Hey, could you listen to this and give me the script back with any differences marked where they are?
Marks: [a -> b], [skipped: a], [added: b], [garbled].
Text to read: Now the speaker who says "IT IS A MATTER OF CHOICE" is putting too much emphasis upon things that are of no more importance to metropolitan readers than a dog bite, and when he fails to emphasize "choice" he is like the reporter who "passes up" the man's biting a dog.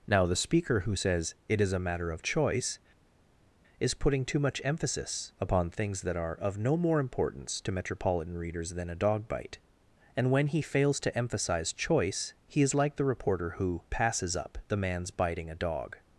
Now the speaker who says "IT IS A MATTER OF CHOICE" is putting too much emphasis upon things that are of no more importance to metropolitan readers than a dog bite, and when he fails to emphasize "choice" he is like the reporter who "passes up" the man's biting a dog.